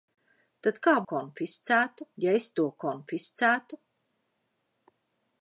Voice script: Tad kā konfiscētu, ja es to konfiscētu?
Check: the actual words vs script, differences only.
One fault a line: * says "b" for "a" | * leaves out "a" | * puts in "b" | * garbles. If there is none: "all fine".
all fine